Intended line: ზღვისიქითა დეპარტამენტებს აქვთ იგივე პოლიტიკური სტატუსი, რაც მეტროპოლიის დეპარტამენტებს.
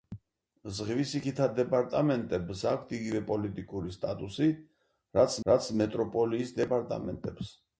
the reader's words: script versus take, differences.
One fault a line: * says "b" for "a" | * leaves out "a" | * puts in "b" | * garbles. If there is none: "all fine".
* puts in "რაც"